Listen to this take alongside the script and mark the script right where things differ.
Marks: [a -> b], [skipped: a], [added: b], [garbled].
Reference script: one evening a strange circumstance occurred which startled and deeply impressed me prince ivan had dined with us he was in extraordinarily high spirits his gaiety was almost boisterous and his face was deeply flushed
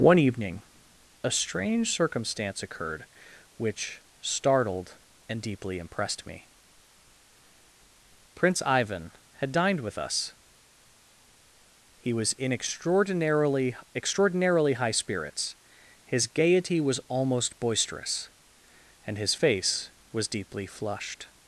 one evening a strange circumstance occurred which startled and deeply impressed me prince ivan had dined with us he was in extraordinarily [added: extraordinarily] high spirits his gaiety was almost boisterous and his face was deeply flushed